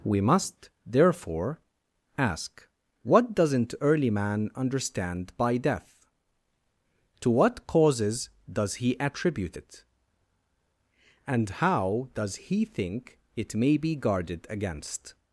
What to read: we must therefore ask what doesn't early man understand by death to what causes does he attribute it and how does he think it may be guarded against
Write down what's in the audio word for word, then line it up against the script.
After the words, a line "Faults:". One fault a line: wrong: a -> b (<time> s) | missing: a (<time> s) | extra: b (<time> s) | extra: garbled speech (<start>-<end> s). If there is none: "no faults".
we must therefore ask what doesn't early man understand by death to what causes does he attribute it and how does he think it may be guarded against
Faults:
no faults